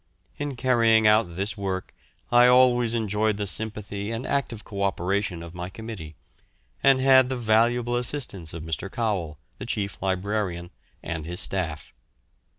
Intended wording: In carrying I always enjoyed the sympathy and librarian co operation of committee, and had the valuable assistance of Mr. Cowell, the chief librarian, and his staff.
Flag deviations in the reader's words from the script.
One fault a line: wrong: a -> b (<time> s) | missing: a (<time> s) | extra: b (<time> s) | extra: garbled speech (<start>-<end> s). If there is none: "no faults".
extra: out this work (1.1 s)
wrong: librarian -> active (4.2 s)
extra: my (5.5 s)